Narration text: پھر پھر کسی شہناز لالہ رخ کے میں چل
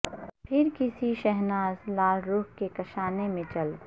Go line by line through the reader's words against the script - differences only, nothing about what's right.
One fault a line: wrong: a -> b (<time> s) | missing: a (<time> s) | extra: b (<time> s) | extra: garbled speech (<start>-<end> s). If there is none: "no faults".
missing: پھر (0.7 s)
extra: کاشانے (2.7 s)